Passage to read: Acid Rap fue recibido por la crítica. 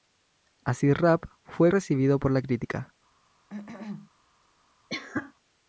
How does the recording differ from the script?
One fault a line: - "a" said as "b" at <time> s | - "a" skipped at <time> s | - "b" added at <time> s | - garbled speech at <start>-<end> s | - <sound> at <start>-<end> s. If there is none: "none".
- cough at 3.5-4.1 s
- cough at 4.9-5.3 s